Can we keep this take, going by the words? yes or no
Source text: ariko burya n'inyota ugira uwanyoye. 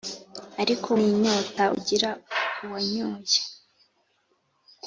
no